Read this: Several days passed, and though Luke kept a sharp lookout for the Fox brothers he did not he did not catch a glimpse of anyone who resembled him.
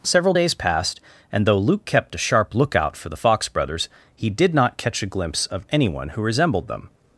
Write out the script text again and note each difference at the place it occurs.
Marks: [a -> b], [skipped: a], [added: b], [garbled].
Several days passed, and though Luke kept a sharp lookout for the Fox brothers he did not [skipped: he did not] catch a glimpse of anyone who resembled [him. -> them]